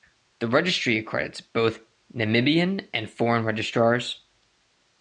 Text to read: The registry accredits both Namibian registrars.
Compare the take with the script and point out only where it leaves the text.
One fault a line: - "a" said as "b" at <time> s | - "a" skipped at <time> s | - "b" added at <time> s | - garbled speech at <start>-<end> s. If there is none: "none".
- "and foreign" added at 2.9 s